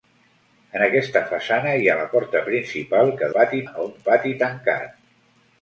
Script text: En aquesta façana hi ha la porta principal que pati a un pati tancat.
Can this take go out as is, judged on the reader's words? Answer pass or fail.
pass